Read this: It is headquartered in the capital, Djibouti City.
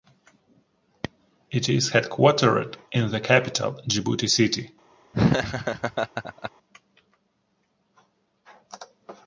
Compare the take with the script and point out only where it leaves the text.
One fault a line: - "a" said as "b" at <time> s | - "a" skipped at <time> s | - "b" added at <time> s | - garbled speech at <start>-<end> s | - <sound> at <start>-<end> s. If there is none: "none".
- laugh at 5.1-6.5 s